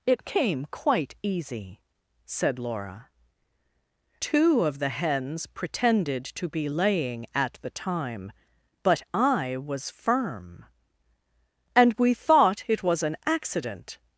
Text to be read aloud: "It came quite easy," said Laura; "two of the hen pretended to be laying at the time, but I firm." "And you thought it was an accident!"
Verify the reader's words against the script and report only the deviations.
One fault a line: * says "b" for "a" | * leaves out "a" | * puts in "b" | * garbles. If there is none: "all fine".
* says "hens" for "hen"
* puts in "was"
* says "we" for "you"